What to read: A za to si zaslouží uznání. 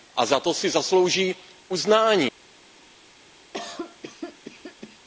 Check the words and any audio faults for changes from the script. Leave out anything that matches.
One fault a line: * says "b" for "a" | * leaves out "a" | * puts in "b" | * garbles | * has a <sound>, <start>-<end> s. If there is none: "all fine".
* has a cough, 3.5-5.0 s